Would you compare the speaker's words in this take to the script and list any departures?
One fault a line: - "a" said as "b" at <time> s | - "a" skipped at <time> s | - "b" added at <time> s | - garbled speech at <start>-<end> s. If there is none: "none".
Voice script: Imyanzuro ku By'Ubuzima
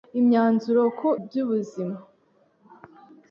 none